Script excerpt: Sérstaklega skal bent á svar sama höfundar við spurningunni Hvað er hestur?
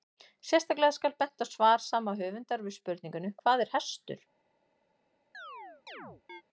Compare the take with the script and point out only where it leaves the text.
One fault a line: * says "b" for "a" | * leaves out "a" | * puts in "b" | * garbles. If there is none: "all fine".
all fine